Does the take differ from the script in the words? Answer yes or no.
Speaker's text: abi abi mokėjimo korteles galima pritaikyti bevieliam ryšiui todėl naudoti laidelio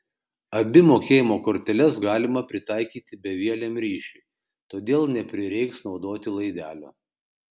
yes